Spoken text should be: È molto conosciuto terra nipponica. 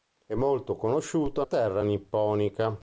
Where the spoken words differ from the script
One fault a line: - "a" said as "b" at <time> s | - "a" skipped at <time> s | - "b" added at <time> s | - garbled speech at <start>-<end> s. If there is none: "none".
none